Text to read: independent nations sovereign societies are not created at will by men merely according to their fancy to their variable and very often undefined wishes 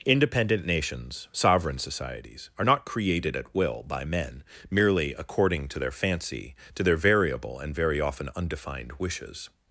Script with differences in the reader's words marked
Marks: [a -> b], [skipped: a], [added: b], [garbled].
independent nations sovereign societies are not created at will by men merely according to their fancy to their variable and very often undefined wishes